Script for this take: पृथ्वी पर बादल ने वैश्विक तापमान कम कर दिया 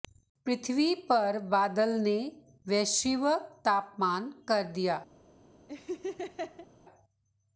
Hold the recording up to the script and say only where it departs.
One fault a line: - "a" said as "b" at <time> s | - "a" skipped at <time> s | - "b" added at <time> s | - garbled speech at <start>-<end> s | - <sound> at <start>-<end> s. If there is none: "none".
- "कम" skipped at 4.3 s
- laugh at 5.7-6.7 s